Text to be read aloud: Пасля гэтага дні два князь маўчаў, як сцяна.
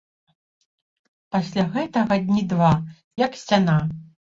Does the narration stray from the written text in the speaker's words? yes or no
yes